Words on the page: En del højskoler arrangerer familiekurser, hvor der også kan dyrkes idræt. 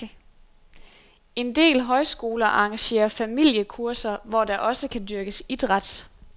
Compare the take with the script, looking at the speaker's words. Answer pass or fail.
pass